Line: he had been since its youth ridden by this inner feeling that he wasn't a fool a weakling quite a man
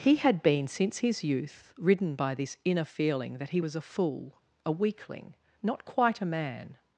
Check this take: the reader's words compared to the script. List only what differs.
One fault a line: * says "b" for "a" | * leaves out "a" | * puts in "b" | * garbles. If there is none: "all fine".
* says "his" for "its"
* says "was" for "wasn't"
* puts in "not"